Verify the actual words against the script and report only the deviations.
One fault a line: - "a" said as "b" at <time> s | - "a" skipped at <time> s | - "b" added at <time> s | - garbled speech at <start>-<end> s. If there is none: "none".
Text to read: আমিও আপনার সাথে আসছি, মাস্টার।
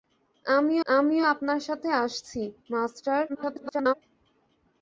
- "আমিও" added at 0.9 s
- garbled speech at 3.3-3.9 s